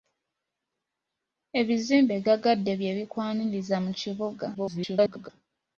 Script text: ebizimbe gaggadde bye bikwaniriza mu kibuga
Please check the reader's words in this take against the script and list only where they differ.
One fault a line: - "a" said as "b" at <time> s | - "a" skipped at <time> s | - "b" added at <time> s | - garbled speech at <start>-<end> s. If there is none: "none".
- garbled speech at 4.5-5.3 s